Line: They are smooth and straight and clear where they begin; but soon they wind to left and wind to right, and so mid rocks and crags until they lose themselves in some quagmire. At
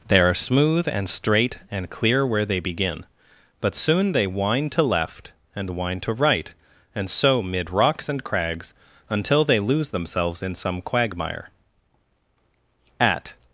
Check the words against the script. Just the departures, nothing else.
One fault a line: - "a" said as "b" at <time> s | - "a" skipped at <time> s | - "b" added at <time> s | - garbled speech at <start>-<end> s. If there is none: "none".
none